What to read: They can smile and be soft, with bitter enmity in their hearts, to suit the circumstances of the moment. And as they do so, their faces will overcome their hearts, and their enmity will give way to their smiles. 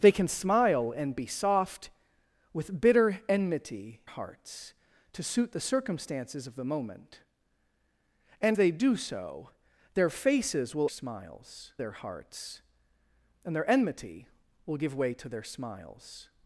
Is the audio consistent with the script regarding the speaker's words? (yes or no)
no